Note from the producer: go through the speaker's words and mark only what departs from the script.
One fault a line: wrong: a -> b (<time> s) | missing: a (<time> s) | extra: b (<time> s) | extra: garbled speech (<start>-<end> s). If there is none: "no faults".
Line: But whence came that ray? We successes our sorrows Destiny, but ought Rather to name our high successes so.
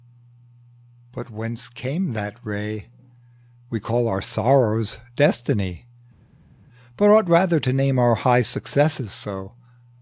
wrong: successes -> call (3.8 s)